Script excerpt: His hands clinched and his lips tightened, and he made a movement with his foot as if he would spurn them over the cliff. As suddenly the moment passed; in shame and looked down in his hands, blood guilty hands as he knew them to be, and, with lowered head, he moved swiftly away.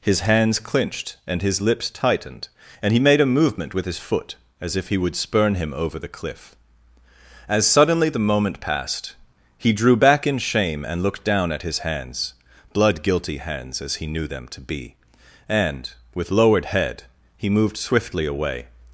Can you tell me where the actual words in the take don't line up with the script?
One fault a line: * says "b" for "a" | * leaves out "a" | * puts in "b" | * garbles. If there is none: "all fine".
* says "him" for "them"
* puts in "he drew back"
* says "at" for "in"